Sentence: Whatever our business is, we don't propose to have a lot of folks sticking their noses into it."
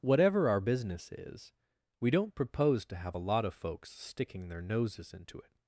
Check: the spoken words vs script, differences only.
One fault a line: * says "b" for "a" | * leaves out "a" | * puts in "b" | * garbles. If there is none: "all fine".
all fine